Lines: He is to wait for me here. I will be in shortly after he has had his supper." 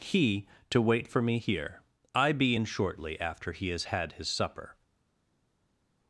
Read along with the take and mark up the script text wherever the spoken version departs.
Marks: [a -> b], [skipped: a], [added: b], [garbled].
He [skipped: is] to wait for me here. I [skipped: will] be in shortly after he has had his supper."